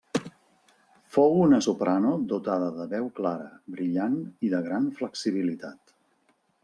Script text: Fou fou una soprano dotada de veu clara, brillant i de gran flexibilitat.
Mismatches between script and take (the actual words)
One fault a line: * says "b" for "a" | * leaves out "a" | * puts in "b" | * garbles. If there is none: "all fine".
* leaves out "fou"